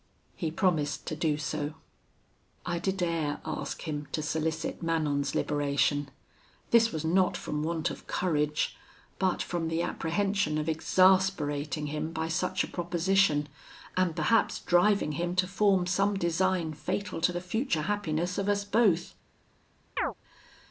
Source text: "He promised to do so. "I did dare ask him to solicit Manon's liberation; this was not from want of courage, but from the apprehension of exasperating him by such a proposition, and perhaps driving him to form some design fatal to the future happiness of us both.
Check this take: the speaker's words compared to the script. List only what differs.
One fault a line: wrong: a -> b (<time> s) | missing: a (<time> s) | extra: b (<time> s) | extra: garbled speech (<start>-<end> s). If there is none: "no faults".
no faults